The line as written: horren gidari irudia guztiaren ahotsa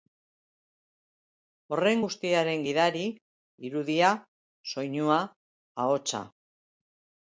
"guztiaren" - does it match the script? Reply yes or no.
no